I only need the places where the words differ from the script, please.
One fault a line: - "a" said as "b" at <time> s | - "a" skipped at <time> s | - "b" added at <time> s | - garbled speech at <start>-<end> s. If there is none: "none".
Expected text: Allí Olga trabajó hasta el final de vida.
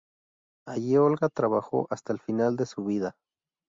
- "su" added at 2.6 s